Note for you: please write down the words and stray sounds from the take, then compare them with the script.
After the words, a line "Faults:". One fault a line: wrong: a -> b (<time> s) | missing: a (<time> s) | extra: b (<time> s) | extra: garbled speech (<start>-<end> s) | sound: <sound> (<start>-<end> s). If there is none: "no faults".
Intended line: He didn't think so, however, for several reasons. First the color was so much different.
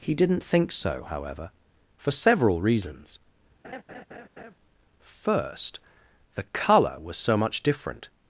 He didn't think so, however, for several reasons. First the color was so much different.
Faults:
sound: laugh (3.6-4.5 s)